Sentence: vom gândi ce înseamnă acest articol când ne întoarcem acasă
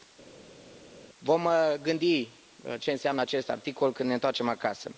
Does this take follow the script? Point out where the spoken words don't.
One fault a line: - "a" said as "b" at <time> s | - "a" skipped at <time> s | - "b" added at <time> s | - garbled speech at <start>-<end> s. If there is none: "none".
none